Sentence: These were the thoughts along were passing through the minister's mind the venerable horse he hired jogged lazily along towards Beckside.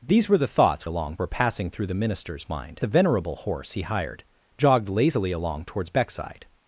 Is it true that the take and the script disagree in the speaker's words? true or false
false